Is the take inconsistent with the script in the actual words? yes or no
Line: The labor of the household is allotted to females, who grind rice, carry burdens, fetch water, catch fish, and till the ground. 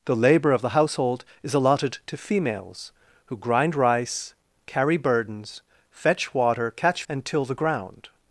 yes